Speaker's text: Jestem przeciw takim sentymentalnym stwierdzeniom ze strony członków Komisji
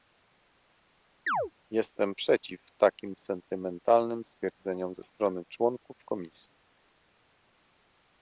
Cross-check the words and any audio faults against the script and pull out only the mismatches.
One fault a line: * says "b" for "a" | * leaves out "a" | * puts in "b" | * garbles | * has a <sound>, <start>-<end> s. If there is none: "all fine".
* has a chirp, 1.3-1.5 s